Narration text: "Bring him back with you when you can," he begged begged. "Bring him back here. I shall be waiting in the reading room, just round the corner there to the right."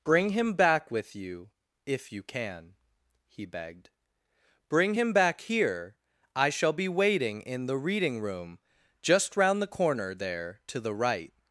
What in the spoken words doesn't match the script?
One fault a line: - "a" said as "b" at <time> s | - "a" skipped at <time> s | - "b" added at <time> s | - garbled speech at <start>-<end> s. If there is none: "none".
- "when" said as "if" at 1.9 s
- "begged" skipped at 3.9 s